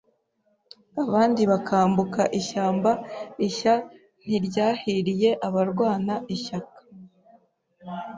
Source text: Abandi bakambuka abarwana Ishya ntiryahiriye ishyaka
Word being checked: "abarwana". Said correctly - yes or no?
no